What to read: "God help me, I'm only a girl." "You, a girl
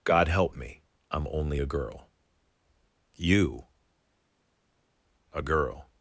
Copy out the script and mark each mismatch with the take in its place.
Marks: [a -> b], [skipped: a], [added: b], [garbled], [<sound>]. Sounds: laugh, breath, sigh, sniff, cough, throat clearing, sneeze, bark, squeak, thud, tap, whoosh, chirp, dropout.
"God help me, I'm only a girl." "You, a girl